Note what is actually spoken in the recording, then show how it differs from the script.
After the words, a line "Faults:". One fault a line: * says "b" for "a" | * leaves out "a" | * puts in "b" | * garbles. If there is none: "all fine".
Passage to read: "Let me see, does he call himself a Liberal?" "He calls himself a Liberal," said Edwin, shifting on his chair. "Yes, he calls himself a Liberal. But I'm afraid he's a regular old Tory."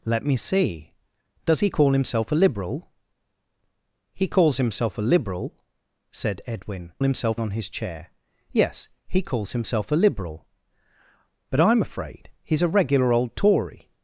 "Let me see, does he call himself a Liberal?" "He calls himself a Liberal," said Edwin, himself on his chair. "Yes, he calls himself a Liberal. But I'm afraid he's a regular old Tory."
Faults:
* says "himself" for "shifting"